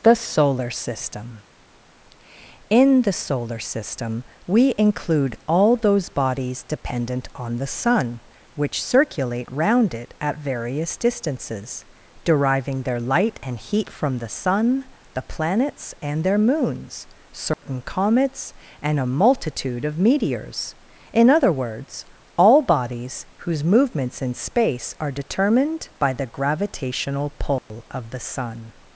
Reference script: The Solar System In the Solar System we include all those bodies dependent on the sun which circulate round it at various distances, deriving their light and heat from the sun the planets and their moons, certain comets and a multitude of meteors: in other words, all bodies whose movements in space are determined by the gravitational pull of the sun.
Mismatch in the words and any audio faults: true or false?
true